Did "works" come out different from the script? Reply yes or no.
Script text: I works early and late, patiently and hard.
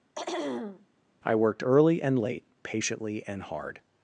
yes